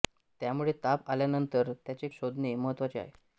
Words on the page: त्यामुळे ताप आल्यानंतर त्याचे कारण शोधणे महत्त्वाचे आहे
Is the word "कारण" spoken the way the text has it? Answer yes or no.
no